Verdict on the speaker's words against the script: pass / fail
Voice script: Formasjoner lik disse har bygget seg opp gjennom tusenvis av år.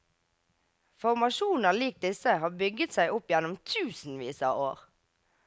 pass